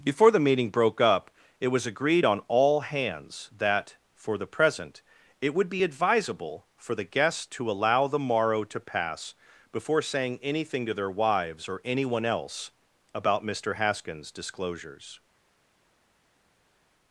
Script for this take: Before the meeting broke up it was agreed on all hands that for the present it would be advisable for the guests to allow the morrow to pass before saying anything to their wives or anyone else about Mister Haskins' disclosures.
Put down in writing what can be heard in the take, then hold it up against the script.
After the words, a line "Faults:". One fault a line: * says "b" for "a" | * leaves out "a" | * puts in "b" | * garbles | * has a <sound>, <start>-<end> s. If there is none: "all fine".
Before the meeting broke up it was agreed on all hands that for the present it would be advisable for the guests to allow the morrow to pass before saying anything to their wives or anyone else about Mister Haskins' disclosures.
Faults:
all fine